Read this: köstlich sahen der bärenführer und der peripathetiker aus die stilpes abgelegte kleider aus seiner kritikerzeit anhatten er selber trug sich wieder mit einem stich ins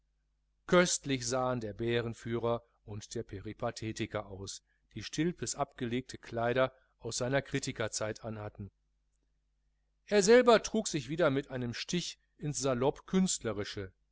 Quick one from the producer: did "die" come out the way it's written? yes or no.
yes